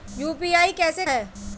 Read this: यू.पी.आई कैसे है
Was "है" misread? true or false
false